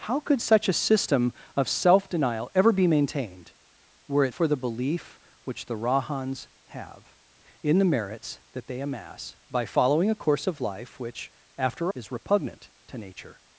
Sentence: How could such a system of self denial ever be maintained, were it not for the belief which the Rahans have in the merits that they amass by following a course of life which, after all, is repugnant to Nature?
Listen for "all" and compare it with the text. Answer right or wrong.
wrong